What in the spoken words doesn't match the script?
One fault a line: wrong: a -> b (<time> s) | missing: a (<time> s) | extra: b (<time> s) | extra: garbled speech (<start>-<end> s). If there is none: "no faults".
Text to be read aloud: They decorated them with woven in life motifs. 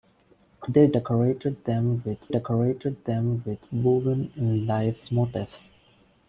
extra: decorated them with (2.3 s)